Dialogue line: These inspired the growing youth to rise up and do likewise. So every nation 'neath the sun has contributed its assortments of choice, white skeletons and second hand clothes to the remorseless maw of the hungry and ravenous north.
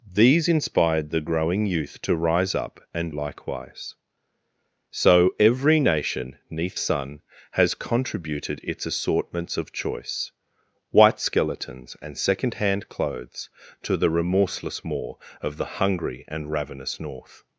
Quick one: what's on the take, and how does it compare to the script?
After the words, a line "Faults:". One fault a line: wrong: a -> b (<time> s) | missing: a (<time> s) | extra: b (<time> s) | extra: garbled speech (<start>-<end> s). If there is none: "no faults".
These inspired the growing youth to rise up and likewise. So every nation 'neath sun has contributed its assortments of choice, white skeletons and second hand clothes to the remorseless maw of the hungry and ravenous north.
Faults:
missing: do (3.1 s)
missing: the (6.8 s)